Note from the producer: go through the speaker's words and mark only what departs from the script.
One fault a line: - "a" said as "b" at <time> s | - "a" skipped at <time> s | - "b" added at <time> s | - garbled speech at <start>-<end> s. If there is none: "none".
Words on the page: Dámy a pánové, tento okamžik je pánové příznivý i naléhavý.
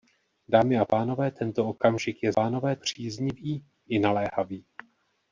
none